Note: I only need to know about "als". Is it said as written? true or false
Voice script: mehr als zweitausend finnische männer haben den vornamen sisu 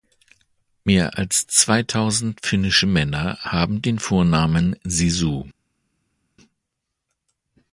true